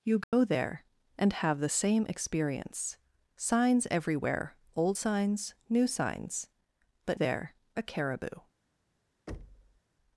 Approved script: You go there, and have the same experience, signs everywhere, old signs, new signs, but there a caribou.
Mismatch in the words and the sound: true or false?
true